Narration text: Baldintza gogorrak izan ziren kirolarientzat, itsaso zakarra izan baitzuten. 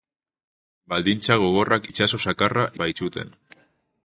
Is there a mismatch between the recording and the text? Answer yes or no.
yes